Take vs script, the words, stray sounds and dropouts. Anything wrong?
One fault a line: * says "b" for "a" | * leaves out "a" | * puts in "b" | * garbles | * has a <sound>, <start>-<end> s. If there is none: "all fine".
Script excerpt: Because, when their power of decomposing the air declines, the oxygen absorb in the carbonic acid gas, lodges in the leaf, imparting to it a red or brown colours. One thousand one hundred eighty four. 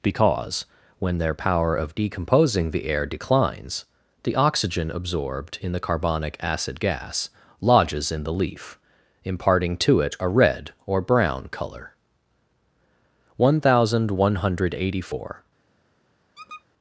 * says "absorbed" for "absorb"
* says "colour" for "colours"
* has a squeak, 16.3-16.6 s